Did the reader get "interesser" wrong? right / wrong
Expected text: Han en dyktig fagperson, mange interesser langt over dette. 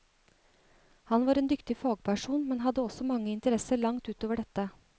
right